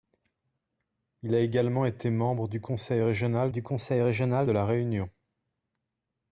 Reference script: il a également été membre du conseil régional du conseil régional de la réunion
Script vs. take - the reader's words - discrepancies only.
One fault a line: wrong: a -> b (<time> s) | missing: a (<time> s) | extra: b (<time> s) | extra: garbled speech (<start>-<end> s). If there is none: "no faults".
no faults